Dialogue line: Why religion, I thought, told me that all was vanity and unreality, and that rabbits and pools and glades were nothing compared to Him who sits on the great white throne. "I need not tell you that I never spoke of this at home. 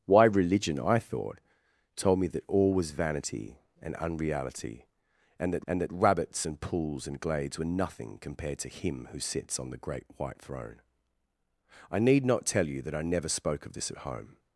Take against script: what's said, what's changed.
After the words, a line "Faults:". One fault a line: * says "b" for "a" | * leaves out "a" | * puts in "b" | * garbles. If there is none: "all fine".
Why religion, I thought, told me that all was vanity and unreality, and that and that rabbits and pools and glades were nothing compared to Him who sits on the great white throne. "I need not tell you that I never spoke of this at home.
Faults:
* puts in "and that"